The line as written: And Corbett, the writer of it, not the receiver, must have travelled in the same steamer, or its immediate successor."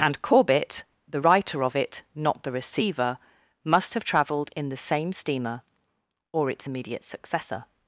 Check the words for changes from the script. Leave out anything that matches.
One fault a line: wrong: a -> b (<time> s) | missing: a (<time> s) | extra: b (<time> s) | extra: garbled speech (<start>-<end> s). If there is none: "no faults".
no faults